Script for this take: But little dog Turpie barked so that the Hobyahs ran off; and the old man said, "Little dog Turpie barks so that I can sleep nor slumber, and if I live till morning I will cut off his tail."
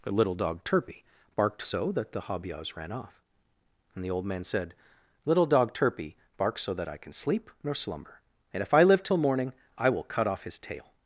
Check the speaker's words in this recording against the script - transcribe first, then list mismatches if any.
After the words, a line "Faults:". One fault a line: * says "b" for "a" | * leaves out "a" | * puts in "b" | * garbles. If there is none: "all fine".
But little dog Turpie barked so that the Hobyahs ran off; and the old man said, "Little dog Turpie barks so that I can sleep nor slumber, and if I live till morning I will cut off his tail."
Faults:
all fine